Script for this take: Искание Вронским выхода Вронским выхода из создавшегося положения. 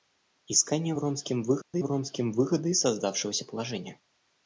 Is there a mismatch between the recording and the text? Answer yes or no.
no